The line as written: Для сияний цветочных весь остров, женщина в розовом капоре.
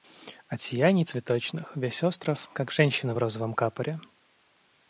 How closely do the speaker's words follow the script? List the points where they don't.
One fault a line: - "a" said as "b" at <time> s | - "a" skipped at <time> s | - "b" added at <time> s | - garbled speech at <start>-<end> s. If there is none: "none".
- "Для" said as "От" at 0.5 s
- "как" added at 2.5 s